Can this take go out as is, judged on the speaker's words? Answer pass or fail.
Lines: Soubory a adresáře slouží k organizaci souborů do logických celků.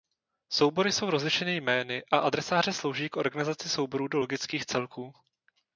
fail